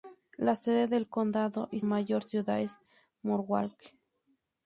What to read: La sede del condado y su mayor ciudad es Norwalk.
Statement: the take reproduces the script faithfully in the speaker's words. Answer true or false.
false